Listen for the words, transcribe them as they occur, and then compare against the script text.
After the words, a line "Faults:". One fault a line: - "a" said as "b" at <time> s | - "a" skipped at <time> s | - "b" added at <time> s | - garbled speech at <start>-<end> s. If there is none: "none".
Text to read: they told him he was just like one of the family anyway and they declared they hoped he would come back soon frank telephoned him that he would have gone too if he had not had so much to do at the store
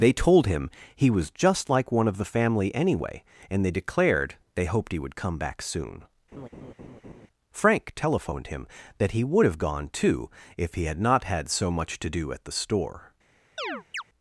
they told him he was just like one of the family anyway and they declared they hoped he would come back soon frank telephoned him that he would have gone too if he had not had so much to do at the store
Faults:
none